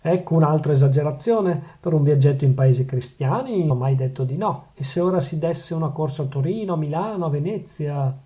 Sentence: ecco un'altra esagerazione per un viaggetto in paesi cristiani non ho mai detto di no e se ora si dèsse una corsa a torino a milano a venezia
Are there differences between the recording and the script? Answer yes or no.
yes